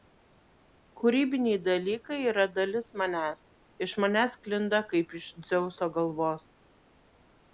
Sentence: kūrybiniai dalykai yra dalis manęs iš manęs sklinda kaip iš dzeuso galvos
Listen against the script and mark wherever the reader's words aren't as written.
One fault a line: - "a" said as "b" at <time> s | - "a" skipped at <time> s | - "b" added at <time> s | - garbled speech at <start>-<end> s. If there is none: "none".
none